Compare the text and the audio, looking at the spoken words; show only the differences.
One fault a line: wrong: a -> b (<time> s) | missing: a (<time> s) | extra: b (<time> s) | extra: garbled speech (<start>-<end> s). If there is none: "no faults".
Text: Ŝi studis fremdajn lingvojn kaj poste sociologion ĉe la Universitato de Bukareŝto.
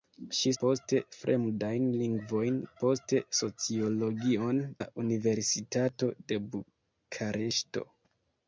wrong: studis -> poste (0.6 s)
missing: kaj (2.6 s)
missing: ĉe (4.6 s)